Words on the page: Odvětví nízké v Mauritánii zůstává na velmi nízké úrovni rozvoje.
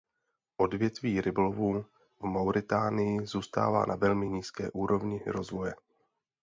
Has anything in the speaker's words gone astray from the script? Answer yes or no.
yes